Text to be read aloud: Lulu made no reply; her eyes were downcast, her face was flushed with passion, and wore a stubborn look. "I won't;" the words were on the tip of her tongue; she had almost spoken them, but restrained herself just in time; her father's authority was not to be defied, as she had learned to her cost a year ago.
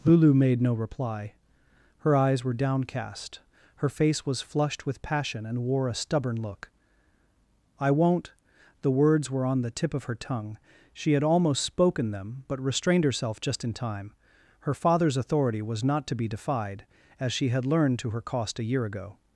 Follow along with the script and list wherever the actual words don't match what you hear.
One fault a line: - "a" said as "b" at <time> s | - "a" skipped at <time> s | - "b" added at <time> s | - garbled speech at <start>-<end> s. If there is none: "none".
none